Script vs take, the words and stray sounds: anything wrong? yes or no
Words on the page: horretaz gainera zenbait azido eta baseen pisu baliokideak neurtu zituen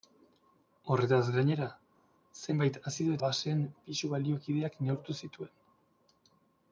yes